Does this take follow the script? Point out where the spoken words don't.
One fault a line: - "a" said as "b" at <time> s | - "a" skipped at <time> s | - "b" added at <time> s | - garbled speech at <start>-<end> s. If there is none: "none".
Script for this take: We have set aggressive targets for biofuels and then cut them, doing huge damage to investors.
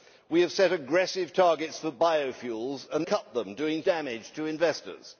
- "then" skipped at 3.0 s
- "huge" skipped at 3.8 s